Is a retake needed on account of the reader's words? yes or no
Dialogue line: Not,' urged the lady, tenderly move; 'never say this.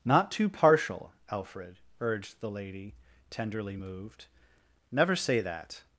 yes